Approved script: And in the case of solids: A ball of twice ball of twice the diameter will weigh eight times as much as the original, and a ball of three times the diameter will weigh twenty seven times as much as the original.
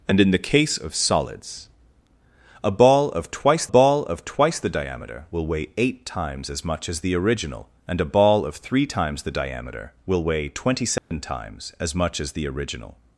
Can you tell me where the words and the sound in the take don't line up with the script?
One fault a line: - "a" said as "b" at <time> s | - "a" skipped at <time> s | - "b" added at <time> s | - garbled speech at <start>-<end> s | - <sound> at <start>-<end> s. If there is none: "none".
- dropout at 11.0-11.1 s